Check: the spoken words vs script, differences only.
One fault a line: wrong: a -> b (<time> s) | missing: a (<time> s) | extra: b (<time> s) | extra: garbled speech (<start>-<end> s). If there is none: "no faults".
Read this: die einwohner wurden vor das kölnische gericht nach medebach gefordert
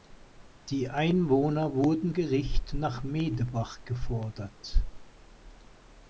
missing: vor das kölnische (2.1 s)